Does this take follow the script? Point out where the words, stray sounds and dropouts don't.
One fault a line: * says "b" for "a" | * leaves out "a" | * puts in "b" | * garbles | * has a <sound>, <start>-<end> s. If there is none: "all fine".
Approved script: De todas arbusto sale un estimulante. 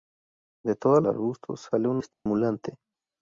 * has a dropout, 2.1-2.3 s